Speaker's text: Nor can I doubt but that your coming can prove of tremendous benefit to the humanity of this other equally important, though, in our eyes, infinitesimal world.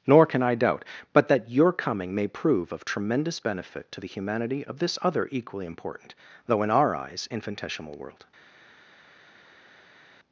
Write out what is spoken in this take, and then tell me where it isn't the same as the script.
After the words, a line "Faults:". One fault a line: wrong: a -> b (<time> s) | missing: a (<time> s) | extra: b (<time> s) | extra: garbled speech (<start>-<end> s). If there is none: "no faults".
Nor can I doubt but that your coming may prove of tremendous benefit to the humanity of this other equally important, though, in our eyes, infinitesimal world.
Faults:
wrong: can -> may (2.1 s)